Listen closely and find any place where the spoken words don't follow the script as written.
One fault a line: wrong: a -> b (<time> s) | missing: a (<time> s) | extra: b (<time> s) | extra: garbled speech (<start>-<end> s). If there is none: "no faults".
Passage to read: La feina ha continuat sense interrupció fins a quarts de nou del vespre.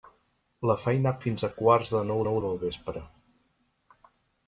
missing: continuat sense interrupció (1.2 s)
extra: nou (2.3 s)